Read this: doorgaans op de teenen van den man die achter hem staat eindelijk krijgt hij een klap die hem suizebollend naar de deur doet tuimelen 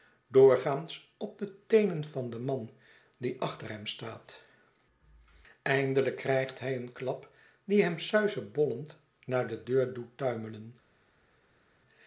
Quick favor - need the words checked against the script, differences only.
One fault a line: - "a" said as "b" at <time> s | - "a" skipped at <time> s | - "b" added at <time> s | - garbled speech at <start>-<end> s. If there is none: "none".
none